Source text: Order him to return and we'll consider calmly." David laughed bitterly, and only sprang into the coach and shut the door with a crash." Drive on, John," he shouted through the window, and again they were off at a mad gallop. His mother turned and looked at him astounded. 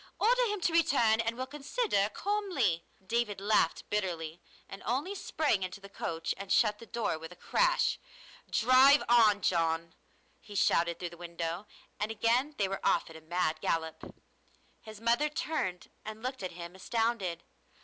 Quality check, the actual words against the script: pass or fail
pass